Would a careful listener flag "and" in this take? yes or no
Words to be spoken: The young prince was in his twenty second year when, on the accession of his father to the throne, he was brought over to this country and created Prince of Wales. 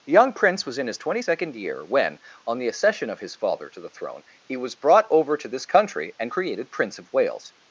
no